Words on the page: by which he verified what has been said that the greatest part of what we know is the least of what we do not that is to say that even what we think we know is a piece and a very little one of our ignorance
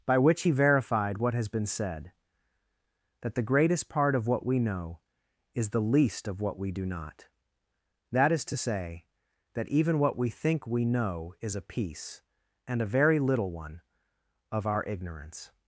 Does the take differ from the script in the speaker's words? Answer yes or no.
no